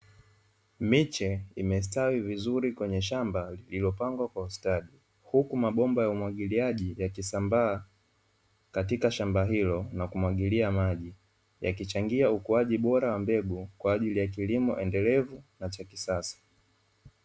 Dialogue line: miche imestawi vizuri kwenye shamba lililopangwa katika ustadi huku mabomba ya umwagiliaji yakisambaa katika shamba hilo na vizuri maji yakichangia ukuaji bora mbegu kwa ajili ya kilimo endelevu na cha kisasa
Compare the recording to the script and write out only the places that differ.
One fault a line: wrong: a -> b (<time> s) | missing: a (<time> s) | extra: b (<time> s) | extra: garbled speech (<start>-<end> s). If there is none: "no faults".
wrong: katika -> kwa (4.3 s)
wrong: vizuri -> kumwagilia (10.1 s)
extra: wa (13.1 s)